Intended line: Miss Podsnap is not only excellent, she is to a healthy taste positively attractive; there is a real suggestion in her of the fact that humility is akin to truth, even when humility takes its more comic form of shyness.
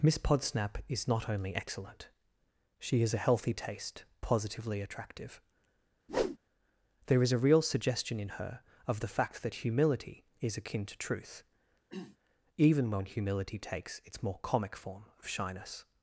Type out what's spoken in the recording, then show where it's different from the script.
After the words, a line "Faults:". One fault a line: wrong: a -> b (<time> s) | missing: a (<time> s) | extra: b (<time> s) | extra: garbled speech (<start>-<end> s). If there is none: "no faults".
Miss Podsnap is not only excellent, she is a healthy taste positively attractive; there is a real suggestion in her of the fact that humility is akin to truth, even when humility takes its more comic form of shyness.
Faults:
missing: to (3.1 s)